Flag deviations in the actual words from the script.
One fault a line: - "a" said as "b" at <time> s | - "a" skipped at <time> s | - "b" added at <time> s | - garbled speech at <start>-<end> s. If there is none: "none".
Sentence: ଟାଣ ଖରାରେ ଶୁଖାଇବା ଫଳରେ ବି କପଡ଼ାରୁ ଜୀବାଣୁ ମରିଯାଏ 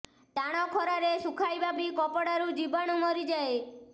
- "ଫଳରେ" skipped at 1.7 s